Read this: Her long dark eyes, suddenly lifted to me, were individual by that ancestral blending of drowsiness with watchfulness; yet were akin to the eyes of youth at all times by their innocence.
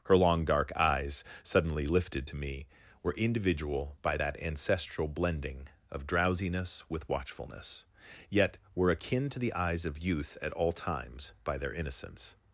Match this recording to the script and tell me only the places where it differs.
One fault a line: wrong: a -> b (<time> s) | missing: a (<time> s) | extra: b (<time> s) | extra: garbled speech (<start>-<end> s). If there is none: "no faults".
no faults